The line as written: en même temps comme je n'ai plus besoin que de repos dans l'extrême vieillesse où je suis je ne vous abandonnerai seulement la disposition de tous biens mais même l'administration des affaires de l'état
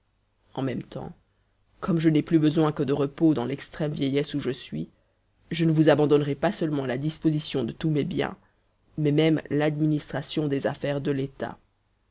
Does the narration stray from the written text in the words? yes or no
yes